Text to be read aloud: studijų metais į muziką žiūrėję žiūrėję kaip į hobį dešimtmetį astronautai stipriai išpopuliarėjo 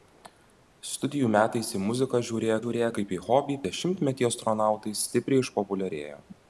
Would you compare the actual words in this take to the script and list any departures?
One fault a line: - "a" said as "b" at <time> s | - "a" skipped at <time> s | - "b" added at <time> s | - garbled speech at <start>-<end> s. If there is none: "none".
none